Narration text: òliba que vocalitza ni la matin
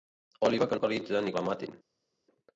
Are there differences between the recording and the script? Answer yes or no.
no